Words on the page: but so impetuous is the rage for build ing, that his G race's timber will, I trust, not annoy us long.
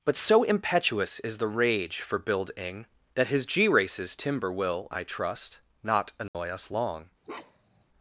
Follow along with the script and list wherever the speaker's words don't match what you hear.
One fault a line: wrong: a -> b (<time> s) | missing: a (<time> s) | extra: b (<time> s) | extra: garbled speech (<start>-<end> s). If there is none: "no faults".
no faults